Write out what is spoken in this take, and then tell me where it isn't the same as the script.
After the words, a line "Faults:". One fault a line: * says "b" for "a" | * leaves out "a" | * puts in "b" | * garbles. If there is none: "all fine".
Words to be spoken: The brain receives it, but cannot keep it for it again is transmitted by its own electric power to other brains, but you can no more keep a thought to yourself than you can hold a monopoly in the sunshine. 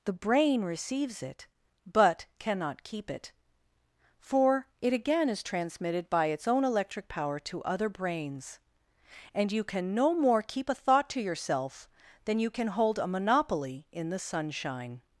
The brain receives it, but cannot keep it for it again is transmitted by its own electric power to other brains, and you can no more keep a thought to yourself than you can hold a monopoly in the sunshine.
Faults:
* says "and" for "but"